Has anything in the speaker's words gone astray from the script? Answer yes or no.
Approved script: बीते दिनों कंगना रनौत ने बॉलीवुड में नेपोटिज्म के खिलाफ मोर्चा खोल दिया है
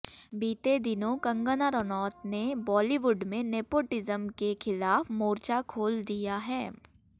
no